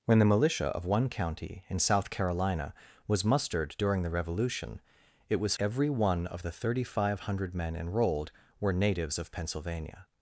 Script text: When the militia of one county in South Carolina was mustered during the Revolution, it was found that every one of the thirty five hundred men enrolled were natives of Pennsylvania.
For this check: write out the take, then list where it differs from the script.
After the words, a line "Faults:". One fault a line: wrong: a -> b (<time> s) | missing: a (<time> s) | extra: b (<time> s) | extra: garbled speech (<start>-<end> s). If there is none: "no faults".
When the militia of one county in South Carolina was mustered during the Revolution, it was every one of the thirty five hundred men enrolled were natives of Pennsylvania.
Faults:
missing: found that (5.5 s)